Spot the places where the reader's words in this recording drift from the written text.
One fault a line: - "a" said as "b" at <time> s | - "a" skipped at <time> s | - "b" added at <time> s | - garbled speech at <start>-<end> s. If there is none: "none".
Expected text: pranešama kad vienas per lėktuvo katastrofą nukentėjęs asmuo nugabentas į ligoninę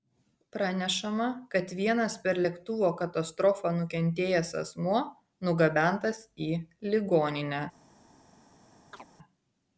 none